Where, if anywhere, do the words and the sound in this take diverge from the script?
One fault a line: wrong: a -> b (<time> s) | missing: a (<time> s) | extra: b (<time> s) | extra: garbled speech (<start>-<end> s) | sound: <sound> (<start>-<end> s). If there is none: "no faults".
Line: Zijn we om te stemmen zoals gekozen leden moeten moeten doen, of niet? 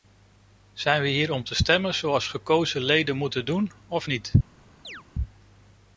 extra: hier (1.1 s)
missing: moeten (3.5 s)
sound: chirp (4.8-5.0 s)